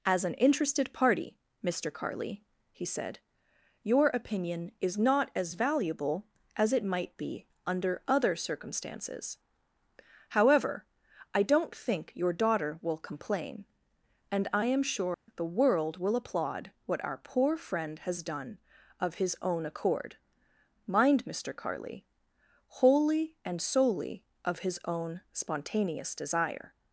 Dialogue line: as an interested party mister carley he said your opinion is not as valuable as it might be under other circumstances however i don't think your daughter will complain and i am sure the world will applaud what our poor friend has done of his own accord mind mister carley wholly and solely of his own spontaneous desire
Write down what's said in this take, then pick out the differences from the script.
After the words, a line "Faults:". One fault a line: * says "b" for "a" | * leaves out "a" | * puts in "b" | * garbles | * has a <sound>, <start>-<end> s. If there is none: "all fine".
as an interested party mister carley he said your opinion is not as valuable as it might be under other circumstances however i don't think your daughter will complain and i am sure the world will applaud what our poor friend has done of his own accord mind mister carley wholly and solely of his own spontaneous desire
Faults:
* has a dropout, 15.1-15.3 s